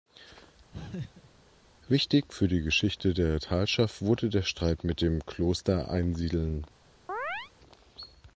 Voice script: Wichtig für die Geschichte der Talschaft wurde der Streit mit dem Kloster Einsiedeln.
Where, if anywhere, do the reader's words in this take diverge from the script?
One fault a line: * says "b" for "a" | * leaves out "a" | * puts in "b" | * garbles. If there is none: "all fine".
all fine